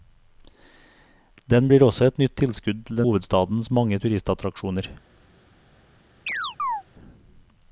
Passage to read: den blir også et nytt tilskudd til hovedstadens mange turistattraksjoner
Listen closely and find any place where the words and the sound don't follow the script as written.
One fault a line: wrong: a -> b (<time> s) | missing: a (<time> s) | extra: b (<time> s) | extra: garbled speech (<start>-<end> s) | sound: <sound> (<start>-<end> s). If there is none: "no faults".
sound: chirp (6.3-6.8 s)